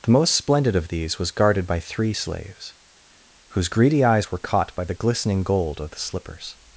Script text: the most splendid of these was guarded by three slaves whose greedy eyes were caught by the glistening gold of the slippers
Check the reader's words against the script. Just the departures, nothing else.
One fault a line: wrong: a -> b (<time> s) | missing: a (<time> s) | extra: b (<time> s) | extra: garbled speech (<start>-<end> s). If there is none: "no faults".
no faults